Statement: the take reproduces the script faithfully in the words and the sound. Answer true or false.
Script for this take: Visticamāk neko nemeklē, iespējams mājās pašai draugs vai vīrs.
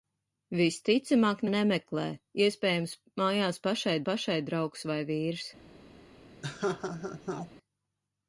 false